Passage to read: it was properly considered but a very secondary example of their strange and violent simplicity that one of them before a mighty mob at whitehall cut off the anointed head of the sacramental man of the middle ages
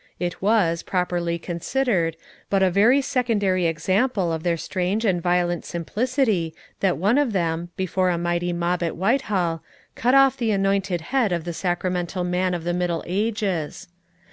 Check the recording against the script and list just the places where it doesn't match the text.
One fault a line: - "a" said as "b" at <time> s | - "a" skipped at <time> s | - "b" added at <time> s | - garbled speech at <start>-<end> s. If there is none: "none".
none